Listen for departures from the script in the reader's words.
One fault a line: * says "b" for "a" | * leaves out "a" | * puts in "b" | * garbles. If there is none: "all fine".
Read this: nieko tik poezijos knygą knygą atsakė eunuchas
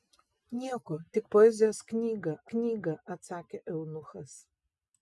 all fine